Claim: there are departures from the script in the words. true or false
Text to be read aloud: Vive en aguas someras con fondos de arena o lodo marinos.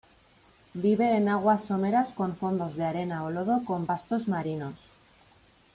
true